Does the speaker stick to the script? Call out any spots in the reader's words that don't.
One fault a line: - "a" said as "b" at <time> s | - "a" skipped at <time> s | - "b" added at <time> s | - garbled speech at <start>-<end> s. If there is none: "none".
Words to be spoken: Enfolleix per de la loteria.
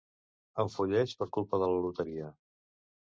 - "culpa" added at 1.4 s